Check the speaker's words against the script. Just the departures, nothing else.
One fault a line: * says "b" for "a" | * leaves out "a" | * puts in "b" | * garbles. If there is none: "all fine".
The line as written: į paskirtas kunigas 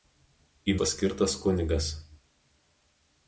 all fine